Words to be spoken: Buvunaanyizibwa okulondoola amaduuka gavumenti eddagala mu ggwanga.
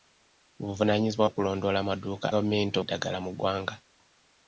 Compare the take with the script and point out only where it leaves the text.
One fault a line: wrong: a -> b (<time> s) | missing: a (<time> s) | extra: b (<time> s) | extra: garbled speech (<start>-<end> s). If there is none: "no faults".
no faults